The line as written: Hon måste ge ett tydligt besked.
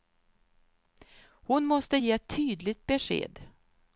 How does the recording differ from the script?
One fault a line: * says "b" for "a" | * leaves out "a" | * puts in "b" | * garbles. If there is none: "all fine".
all fine